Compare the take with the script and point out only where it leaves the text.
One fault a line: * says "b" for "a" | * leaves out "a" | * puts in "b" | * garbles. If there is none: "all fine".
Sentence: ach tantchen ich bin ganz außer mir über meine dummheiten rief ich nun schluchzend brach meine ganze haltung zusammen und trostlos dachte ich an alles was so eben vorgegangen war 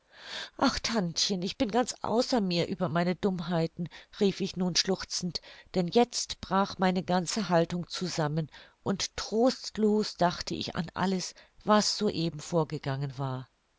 * puts in "denn jetzt"